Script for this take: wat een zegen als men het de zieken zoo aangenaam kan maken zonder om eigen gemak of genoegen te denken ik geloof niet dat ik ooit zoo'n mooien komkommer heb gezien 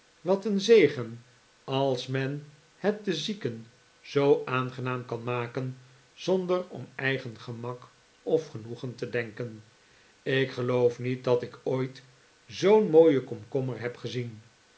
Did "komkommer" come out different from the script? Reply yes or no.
no